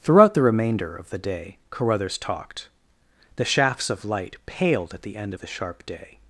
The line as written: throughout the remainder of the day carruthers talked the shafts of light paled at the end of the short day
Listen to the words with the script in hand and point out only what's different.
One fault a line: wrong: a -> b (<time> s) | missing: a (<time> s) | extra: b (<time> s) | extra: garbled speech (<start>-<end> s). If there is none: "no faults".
wrong: short -> sharp (5.5 s)